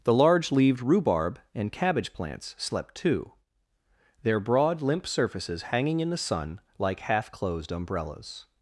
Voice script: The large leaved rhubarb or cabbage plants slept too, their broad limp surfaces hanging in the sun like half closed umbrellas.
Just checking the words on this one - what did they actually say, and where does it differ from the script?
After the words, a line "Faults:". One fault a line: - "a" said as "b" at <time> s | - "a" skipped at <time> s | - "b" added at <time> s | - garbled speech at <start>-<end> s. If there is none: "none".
The large leaved rhubarb and cabbage plants slept too, their broad limp surfaces hanging in the sun like half closed umbrellas.
Faults:
- "or" said as "and" at 1.5 s